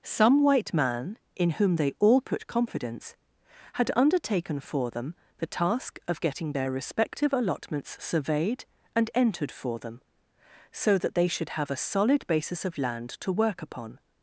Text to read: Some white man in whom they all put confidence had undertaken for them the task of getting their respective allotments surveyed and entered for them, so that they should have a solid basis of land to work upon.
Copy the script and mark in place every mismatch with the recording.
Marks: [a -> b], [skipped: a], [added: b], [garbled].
Some white man in whom they all put confidence had undertaken for them the task of getting their respective allotments surveyed and entered for them, so that they should have a solid basis of land to work upon.